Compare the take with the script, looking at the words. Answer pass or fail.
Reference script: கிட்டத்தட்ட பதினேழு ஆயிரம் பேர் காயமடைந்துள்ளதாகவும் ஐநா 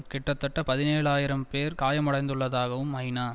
pass